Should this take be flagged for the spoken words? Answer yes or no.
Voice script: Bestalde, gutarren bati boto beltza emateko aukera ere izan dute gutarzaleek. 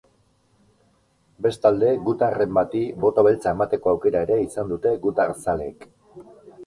no